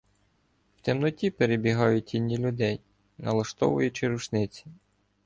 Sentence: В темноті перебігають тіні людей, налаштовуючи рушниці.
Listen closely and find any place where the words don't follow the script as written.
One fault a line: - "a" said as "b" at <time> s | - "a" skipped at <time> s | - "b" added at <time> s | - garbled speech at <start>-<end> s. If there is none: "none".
none